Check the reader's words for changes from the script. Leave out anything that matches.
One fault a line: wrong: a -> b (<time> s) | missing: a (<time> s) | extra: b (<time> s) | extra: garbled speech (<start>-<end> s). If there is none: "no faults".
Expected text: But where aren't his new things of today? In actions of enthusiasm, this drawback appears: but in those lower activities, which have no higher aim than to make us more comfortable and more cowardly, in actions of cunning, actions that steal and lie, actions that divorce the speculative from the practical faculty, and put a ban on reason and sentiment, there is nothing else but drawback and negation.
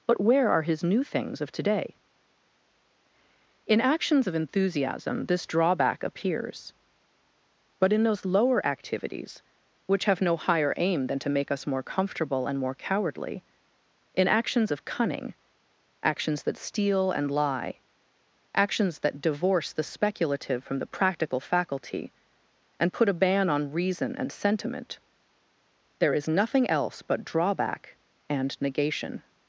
wrong: aren't -> are (0.5 s)